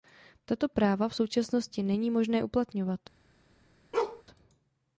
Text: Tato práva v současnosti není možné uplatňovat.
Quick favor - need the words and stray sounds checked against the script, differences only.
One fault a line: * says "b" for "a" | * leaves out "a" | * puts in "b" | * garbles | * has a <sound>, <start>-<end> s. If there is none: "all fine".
* has a bark, 3.9-4.2 s